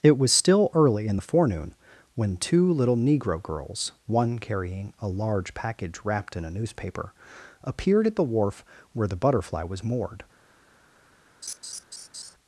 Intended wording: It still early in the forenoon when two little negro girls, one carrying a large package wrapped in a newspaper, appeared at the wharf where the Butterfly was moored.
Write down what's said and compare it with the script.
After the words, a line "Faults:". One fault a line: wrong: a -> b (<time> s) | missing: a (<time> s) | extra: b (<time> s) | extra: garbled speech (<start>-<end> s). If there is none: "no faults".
It was still early in the forenoon when two little negro girls, one carrying a large package wrapped in a newspaper, appeared at the wharf where the Butterfly was moored.
Faults:
extra: was (0.2 s)